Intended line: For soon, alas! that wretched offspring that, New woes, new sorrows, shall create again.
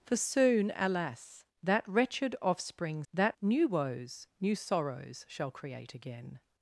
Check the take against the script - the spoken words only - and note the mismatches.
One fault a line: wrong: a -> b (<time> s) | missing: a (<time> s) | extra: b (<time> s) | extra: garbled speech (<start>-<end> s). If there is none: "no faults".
no faults